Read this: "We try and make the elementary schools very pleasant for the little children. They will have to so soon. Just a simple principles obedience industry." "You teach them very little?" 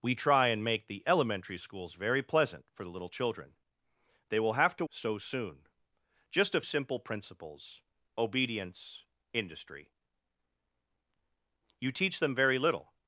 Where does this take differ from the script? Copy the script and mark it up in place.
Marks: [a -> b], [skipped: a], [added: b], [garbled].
"We try and make the elementary schools very pleasant for the little children. They will have to so soon. Just a simple principles obedience industry." "You teach them very little?"